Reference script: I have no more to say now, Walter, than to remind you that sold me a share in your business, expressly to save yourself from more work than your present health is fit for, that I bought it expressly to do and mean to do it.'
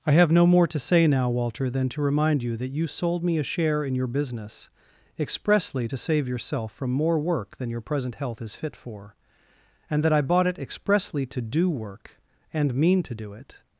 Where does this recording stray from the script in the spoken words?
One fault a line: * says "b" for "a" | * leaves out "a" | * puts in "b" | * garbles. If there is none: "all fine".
* puts in "you"
* puts in "and"
* puts in "work"